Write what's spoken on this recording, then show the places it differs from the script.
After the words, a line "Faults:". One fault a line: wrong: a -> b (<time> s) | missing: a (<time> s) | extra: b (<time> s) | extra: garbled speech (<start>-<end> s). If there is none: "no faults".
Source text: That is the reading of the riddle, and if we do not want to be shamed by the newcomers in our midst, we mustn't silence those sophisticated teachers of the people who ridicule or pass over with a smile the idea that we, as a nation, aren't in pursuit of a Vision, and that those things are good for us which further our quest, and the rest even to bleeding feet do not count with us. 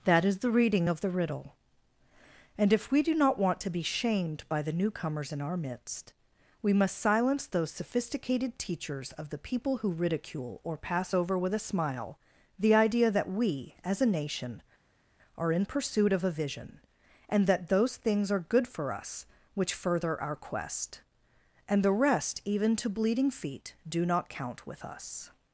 That is the reading of the riddle, and if we do not want to be shamed by the newcomers in our midst, we must silence those sophisticated teachers of the people who ridicule or pass over with a smile the idea that we, as a nation, are in pursuit of a Vision, and that those things are good for us which further our quest, and the rest even to bleeding feet do not count with us.
Faults:
wrong: mustn't -> must (6.7 s)
wrong: aren't -> are (15.4 s)